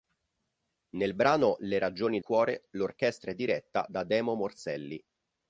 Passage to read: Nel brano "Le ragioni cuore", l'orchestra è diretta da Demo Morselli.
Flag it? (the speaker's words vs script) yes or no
no